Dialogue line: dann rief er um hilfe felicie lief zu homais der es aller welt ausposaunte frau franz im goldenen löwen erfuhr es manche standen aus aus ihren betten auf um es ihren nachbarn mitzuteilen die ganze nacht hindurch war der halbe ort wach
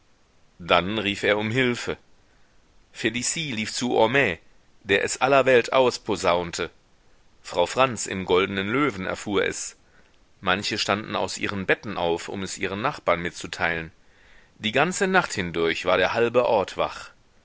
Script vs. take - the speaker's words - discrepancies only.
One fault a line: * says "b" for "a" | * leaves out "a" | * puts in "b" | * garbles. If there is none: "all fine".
* leaves out "aus"